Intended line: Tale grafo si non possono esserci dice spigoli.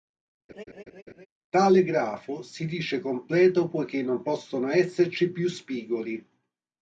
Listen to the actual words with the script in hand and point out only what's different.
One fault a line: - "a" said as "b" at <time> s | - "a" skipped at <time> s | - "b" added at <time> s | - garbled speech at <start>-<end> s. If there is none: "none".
- "dice completo poiché" added at 2.6 s
- "dice" said as "più" at 5.3 s